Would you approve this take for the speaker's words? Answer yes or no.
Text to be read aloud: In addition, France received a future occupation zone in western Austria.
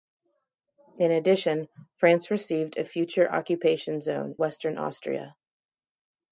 no